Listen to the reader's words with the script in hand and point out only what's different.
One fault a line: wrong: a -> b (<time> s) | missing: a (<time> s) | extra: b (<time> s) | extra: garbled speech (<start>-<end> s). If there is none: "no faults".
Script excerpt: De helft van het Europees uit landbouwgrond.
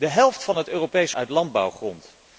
no faults